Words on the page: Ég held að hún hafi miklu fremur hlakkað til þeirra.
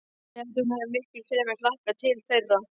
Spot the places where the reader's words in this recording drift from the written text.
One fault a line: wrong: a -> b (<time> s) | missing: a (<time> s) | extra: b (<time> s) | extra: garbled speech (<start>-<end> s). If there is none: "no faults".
no faults